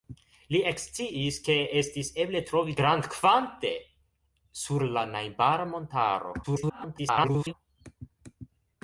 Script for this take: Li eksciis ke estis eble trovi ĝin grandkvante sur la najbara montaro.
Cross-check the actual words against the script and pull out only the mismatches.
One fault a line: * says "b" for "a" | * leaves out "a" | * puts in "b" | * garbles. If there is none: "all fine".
* leaves out "ĝin"
* garbles